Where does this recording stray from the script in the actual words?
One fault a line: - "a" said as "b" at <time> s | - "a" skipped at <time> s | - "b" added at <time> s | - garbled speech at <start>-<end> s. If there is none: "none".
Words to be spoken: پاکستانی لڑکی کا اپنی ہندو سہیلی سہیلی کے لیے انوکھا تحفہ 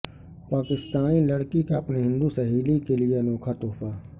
- "سہیلی" skipped at 2.8 s